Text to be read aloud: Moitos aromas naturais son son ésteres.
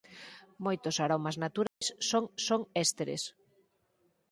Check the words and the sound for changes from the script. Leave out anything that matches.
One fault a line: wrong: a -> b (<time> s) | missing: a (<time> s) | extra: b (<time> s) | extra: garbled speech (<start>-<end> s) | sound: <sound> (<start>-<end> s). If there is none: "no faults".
sound: dropout (1.7-1.8 s)